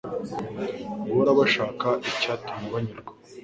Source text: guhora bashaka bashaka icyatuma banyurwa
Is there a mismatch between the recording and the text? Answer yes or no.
yes